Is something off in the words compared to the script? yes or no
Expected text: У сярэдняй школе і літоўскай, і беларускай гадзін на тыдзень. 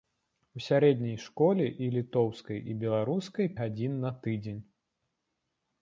no